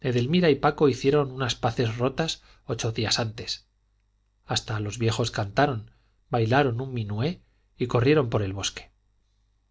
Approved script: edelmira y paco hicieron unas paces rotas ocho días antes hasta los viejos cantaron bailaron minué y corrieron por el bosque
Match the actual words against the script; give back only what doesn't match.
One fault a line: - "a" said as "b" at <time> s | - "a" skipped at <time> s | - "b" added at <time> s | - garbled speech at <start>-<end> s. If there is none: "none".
- "un" added at 6.8 s